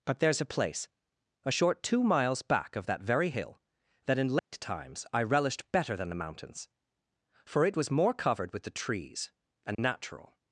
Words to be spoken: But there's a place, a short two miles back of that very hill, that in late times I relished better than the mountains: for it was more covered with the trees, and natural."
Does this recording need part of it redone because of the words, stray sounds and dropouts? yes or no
yes